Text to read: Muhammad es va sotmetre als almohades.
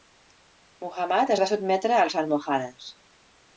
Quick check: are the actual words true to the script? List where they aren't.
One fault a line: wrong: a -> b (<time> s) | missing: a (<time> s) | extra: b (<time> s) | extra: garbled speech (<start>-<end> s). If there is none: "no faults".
no faults